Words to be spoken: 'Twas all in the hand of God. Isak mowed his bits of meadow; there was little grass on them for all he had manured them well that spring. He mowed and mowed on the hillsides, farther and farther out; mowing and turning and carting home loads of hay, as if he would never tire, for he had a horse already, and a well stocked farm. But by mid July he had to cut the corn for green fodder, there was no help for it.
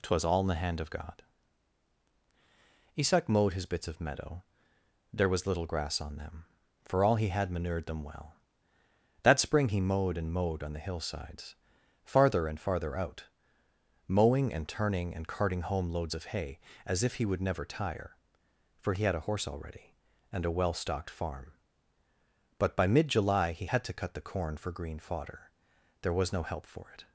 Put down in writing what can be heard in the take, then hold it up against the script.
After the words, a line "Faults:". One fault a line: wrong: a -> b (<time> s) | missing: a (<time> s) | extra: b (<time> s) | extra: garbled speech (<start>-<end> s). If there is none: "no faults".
'Twas all in the hand of God. Isak mowed his bits of meadow; there was little grass on them for all he had manured them well that spring. He mowed and mowed on the hillsides, farther and farther out; mowing and turning and carting home loads of hay, as if he would never tire, for he had a horse already, and a well stocked farm. But by mid July he had to cut the corn for green fodder, there was no help for it.
Faults:
no faults